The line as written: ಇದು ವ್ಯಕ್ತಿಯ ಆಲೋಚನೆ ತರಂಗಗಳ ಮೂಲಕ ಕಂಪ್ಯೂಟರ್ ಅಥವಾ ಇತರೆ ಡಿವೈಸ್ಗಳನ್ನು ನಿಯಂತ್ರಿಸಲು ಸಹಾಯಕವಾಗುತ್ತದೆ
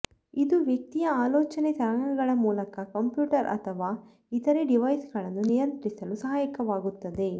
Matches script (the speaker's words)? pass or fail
pass